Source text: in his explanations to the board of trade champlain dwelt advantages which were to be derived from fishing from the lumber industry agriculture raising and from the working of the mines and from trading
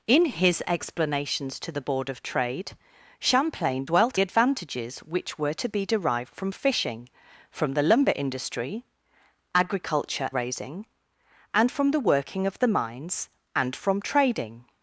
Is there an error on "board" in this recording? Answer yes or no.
no